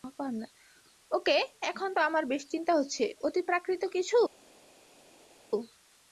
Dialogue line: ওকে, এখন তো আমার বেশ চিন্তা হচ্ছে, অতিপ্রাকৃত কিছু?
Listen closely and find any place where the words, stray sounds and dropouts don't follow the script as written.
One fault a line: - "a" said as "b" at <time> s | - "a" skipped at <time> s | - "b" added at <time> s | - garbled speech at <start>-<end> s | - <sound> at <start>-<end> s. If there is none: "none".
none